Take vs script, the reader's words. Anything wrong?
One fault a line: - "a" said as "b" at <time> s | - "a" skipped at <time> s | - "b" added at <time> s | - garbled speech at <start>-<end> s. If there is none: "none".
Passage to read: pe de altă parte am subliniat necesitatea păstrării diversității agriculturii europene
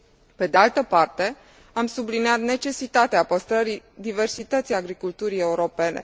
none